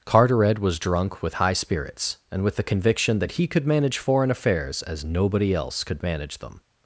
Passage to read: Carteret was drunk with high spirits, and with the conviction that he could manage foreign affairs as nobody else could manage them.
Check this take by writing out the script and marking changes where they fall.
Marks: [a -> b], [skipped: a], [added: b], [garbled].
Carteret was drunk with high spirits, and with the conviction that he could manage foreign affairs as nobody else could manage them.